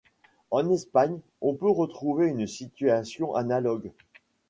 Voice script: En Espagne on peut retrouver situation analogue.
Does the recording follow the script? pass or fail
fail